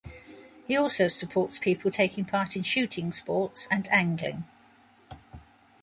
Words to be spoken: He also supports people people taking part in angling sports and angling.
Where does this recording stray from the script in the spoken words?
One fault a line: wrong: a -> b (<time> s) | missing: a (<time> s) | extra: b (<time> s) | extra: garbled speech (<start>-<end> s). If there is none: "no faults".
missing: people (1.9 s)
wrong: angling -> shooting (2.6 s)